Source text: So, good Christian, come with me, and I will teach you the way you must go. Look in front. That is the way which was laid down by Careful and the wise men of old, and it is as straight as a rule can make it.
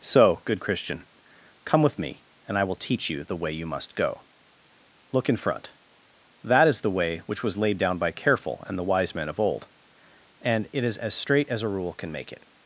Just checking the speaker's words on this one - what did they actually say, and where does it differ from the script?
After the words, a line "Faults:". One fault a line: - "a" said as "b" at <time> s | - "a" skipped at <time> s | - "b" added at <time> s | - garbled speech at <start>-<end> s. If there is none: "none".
So, good Christian, come with me, and I will teach you the way you must go. Look in front. That is the way which was laid down by Careful and the wise men of old, and it is as straight as a rule can make it.
Faults:
none